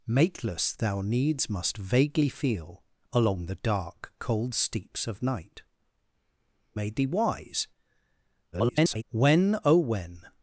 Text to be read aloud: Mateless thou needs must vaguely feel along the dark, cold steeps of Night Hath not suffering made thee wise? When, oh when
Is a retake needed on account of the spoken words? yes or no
yes